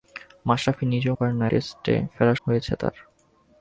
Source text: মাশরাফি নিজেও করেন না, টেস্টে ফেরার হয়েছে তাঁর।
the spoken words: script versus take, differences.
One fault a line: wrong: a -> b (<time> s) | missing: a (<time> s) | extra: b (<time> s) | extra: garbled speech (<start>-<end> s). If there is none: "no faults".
no faults